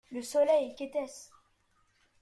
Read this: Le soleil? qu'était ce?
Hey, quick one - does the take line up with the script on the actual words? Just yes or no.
yes